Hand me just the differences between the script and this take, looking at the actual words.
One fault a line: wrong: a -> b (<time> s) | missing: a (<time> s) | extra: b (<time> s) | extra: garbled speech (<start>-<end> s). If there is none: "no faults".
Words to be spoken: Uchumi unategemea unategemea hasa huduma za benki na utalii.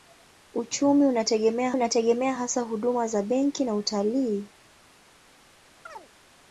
no faults